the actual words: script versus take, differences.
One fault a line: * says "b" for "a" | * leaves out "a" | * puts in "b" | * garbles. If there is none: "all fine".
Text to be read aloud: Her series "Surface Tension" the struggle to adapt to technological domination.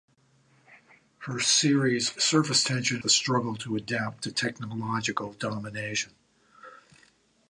all fine